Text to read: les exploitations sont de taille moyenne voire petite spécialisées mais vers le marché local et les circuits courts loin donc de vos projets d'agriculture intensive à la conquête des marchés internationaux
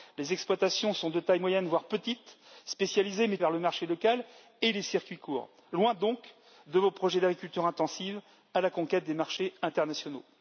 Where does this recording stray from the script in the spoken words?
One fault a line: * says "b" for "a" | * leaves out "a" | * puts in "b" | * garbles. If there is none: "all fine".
all fine